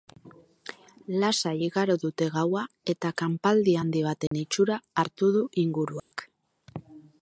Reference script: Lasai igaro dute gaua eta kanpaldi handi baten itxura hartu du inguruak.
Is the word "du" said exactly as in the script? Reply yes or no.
yes